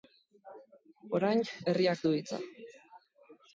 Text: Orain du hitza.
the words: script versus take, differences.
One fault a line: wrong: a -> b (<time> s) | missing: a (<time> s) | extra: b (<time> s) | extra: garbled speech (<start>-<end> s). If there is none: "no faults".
extra: herriak (1.7 s)